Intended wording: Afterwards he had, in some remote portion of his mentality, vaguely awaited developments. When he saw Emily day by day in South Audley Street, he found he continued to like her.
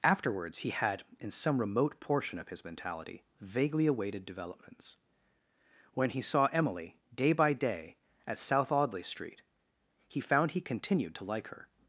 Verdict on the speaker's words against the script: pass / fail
fail